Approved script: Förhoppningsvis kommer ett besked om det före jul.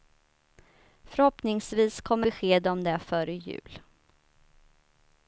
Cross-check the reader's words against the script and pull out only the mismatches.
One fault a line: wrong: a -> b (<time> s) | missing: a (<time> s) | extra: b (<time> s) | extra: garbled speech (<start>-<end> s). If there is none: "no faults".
missing: ett (2.3 s)